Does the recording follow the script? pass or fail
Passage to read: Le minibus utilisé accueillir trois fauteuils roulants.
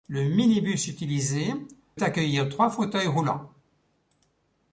pass